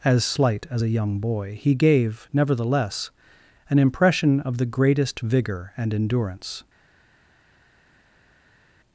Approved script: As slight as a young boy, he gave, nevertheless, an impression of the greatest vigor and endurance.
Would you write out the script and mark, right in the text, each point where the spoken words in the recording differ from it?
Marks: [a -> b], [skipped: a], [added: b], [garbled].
As slight as a young boy, he gave, nevertheless, an impression of the greatest vigor and endurance.